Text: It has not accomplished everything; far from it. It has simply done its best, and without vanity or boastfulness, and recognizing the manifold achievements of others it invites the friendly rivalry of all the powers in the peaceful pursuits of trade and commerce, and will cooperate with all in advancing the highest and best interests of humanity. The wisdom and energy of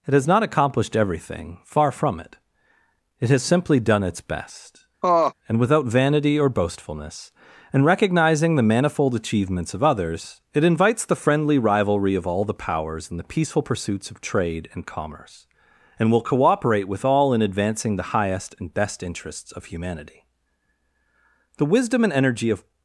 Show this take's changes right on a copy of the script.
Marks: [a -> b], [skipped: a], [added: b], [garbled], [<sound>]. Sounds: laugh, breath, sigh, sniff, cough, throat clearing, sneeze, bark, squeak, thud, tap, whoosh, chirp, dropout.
It has not accomplished everything; far from it. It has simply done its best, [laugh] and without vanity or boastfulness, and recognizing the manifold achievements of others it invites the friendly rivalry of all the powers in the peaceful pursuits of trade and commerce, and will cooperate with all in advancing the highest and best interests of humanity. The wisdom and energy of